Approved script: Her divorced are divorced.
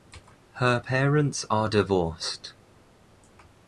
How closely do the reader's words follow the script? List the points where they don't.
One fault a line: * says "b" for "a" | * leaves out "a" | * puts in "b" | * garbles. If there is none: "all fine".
* says "parents" for "divorced"